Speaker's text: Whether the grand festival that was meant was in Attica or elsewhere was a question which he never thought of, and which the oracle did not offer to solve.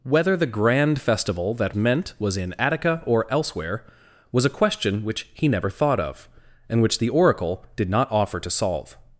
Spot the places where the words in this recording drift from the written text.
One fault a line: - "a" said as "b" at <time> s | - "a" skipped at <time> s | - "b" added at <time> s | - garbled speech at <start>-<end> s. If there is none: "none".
- "was" skipped at 1.8 s